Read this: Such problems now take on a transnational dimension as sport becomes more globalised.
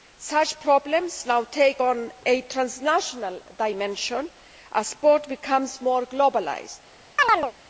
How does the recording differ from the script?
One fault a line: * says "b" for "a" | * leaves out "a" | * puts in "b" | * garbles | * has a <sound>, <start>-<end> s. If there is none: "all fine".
* has a chirp, 7.2-7.5 s